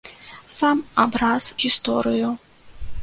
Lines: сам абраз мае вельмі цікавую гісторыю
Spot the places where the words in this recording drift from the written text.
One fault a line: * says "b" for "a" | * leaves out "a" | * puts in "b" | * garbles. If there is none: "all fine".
* leaves out "мае вельмі цікавую"